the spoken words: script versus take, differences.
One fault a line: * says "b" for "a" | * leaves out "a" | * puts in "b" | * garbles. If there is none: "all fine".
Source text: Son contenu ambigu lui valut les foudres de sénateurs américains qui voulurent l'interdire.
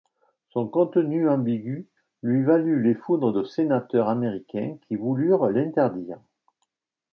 all fine